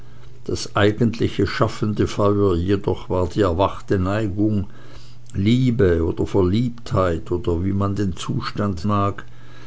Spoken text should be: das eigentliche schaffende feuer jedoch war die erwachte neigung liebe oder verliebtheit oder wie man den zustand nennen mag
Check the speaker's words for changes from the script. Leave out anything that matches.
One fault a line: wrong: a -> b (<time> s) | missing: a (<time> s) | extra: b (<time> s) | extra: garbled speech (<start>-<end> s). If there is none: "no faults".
missing: nennen (8.9 s)